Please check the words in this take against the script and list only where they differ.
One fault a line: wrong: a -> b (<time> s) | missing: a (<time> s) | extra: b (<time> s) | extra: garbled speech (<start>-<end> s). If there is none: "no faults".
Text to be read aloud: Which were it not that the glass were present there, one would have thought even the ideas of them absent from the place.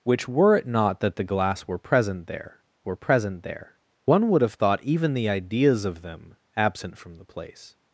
extra: were present there (2.8 s)